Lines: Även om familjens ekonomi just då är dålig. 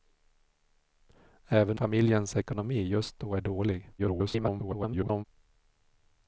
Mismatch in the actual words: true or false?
true